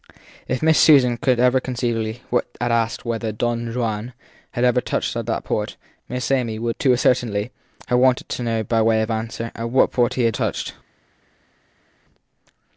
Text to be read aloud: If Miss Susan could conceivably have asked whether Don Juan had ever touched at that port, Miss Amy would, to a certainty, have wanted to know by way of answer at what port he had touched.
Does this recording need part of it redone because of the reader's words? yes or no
no